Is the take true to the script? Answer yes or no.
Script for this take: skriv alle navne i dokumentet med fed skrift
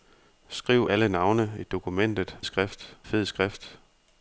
no